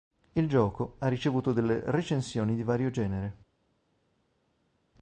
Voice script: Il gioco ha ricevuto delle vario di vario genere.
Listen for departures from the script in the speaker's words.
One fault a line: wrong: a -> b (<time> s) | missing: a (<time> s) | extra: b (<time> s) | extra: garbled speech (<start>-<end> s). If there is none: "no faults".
wrong: vario -> recensioni (1.8 s)